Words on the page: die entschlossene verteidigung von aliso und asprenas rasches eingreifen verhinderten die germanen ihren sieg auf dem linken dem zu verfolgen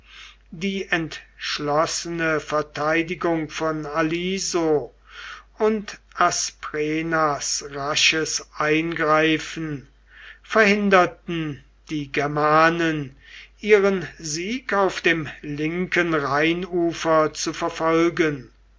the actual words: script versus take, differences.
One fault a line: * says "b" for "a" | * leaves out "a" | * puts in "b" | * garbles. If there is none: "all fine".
* says "rheinufer" for "dem"